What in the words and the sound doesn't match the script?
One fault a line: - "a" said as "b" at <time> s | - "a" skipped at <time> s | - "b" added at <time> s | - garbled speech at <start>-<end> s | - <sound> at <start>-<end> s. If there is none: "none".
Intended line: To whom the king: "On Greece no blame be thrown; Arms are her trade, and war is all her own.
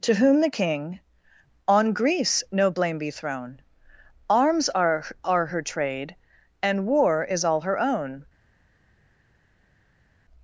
- "are" added at 5.2 s